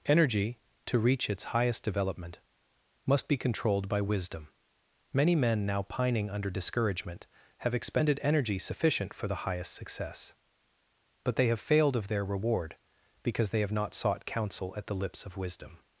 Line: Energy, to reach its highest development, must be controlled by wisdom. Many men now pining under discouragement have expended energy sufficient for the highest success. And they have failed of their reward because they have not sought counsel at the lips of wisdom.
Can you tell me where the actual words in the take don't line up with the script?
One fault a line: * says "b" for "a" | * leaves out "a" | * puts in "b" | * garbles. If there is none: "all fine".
* says "But" for "And"